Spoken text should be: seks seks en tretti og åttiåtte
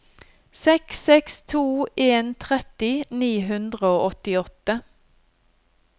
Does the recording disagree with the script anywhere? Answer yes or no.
yes